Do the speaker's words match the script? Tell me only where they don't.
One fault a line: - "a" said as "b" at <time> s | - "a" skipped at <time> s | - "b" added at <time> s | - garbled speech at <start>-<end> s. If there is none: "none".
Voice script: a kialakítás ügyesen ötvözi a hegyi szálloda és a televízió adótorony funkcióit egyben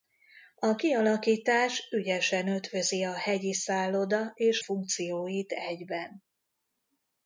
- "a televízió adótorony" skipped at 4.6 s